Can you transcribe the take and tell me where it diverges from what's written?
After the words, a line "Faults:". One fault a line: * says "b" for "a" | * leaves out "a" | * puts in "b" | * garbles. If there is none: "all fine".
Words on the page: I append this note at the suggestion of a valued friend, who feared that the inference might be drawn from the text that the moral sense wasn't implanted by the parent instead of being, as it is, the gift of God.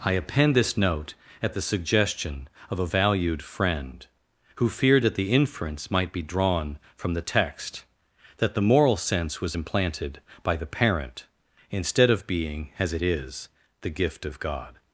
I append this note at the suggestion of a valued friend, who feared that the inference might be drawn from the text that the moral sense was implanted by the parent instead of being, as it is, the gift of God.
Faults:
* says "was" for "wasn't"